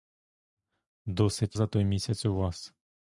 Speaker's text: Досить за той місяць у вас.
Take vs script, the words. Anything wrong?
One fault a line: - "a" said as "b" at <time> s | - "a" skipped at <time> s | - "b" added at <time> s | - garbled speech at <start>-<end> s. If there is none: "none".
none